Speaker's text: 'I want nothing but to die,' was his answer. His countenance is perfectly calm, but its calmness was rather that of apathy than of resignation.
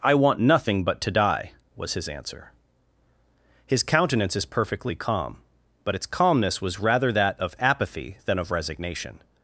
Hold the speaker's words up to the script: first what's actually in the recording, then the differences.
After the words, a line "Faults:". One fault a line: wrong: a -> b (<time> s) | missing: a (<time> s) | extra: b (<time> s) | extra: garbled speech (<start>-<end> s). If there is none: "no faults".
'I want nothing but to die,' was his answer. His countenance is perfectly calm, but its calmness was rather that of apathy than of resignation.
Faults:
no faults